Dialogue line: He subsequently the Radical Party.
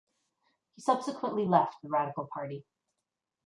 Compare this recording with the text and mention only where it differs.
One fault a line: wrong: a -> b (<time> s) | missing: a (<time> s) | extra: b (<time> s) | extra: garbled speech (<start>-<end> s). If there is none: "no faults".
extra: left (1.4 s)